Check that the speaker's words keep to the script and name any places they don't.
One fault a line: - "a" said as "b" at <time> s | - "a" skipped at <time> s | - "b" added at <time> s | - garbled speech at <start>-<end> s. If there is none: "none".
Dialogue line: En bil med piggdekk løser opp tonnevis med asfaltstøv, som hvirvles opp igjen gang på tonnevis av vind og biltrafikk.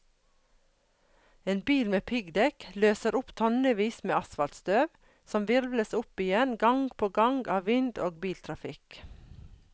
- "tonnevis" said as "gang" at 7.2 s